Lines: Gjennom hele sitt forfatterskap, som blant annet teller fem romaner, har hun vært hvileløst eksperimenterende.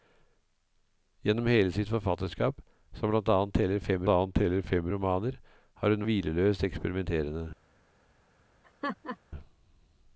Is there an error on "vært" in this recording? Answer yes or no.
yes